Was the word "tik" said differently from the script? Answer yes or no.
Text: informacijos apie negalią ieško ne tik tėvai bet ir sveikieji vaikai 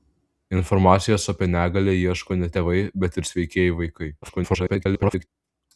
yes